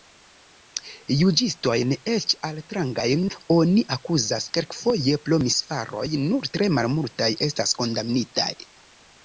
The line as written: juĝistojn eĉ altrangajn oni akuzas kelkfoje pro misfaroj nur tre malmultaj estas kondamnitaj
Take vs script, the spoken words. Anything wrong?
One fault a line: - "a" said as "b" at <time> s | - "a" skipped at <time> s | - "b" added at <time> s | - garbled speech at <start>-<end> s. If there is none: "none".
none